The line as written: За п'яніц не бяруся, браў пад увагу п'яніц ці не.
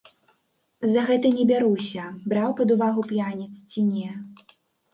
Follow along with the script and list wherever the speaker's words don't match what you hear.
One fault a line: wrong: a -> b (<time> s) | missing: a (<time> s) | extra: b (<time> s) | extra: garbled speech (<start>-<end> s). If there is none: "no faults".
wrong: п'яніц -> гэта (1.1 s)